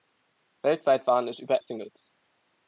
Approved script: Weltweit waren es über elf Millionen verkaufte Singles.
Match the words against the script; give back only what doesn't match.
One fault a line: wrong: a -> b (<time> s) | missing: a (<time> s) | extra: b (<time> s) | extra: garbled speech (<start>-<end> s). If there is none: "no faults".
missing: elf Millionen verkaufte (1.6 s)